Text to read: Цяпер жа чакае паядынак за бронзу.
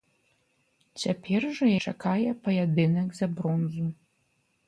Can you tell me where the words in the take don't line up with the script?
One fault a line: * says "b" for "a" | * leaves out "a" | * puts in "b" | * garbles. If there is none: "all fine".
all fine